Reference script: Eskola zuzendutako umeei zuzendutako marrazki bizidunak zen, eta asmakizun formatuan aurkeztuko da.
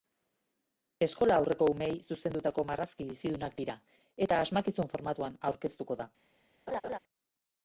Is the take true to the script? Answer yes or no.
no